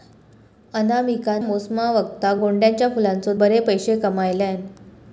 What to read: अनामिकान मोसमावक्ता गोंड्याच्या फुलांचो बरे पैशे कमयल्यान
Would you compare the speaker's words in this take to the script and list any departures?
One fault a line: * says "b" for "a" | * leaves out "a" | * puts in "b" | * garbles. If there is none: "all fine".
all fine